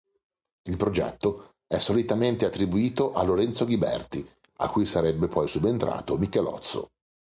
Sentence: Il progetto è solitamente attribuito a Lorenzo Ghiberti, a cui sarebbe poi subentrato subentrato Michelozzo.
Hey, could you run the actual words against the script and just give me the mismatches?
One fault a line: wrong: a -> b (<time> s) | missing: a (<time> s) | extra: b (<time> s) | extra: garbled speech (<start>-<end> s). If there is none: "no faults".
missing: subentrato (6.2 s)